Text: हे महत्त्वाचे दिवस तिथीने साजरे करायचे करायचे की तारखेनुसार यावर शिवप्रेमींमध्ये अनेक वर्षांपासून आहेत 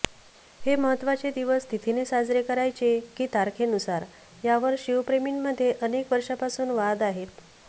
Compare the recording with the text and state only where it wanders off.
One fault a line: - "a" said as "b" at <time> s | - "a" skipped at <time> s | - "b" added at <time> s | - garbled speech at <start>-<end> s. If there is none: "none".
- "करायचे" skipped at 3.0 s
- "वाद" added at 6.7 s